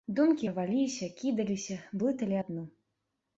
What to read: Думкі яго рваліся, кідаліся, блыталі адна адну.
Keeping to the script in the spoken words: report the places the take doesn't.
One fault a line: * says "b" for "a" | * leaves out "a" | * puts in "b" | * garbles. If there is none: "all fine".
* leaves out "яго"
* leaves out "адна"